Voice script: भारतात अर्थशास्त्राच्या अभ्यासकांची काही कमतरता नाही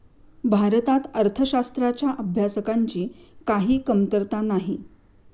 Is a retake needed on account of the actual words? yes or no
no